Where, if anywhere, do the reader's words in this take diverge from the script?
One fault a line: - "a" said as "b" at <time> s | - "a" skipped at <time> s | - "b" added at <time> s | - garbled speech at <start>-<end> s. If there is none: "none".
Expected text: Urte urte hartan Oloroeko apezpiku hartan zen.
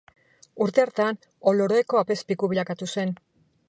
- "urte" skipped at 0.8 s
- "hartan" said as "bilakatu" at 2.5 s